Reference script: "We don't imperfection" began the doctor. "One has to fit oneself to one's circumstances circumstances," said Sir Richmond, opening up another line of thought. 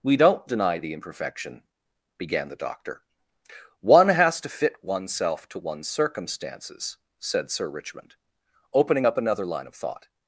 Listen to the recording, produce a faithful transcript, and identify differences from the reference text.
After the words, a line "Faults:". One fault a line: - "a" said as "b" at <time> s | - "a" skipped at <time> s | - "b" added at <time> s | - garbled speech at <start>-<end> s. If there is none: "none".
"We don't deny the imperfection" began the doctor. "One has to fit oneself to one's circumstances," said Sir Richmond, opening up another line of thought.
Faults:
- "deny the" added at 0.5 s
- "circumstances" skipped at 7.0 s